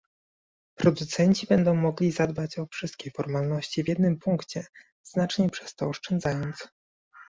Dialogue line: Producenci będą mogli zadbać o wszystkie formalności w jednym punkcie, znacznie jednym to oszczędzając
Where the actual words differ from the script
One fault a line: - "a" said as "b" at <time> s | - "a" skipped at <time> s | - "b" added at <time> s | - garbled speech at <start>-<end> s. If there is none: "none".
- "jednym" said as "przez" at 5.5 s